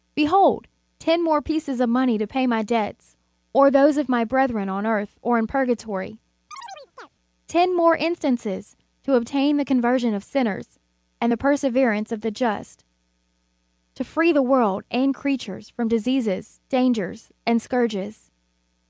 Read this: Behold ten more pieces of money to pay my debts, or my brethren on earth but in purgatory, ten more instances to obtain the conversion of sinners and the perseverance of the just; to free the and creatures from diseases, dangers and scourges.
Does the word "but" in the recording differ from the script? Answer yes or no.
yes